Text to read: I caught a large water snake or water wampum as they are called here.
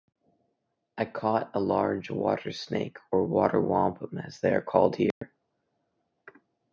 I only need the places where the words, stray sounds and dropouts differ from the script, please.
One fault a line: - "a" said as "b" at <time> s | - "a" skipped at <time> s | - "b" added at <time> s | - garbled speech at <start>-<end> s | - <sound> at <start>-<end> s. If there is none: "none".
- dropout at 5.1-5.2 s